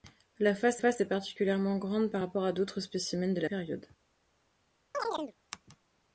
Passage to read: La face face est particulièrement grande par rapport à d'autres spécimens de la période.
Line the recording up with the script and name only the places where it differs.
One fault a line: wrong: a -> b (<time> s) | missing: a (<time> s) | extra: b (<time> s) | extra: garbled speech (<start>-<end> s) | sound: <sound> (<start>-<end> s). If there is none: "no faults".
sound: chirp (4.9-5.3 s)